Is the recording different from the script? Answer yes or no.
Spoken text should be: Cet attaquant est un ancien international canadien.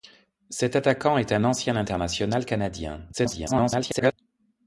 yes